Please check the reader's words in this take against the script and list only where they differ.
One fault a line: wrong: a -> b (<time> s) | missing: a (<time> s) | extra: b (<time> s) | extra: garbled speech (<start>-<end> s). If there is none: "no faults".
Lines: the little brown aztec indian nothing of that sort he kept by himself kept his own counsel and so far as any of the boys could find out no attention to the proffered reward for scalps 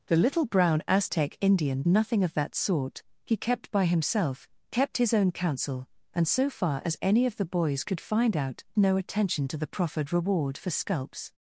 no faults